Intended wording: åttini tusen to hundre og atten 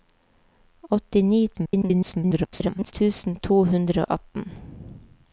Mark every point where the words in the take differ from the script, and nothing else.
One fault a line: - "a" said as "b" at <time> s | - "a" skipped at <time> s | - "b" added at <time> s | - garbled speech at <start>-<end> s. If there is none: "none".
- garbled speech at 1.5-2.9 s